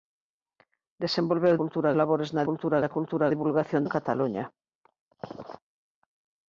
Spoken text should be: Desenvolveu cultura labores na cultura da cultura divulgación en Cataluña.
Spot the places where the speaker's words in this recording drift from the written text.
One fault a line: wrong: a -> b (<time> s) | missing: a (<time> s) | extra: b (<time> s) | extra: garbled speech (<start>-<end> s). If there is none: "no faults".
no faults